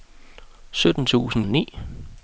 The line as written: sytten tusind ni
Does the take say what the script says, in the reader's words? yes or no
yes